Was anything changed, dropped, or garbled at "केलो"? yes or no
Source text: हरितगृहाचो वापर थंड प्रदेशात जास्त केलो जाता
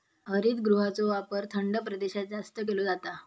no